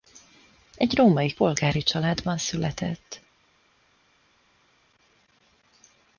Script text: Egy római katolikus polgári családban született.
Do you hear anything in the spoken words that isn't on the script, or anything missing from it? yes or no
yes